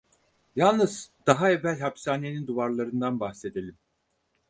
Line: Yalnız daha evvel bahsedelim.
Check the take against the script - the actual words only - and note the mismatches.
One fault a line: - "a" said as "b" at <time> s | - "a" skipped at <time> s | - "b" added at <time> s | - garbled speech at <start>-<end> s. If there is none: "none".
- "hapishanenin duvarlarından" added at 1.8 s